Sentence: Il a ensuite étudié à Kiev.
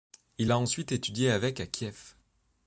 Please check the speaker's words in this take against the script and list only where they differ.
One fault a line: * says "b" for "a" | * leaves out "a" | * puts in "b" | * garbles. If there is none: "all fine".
* puts in "avec"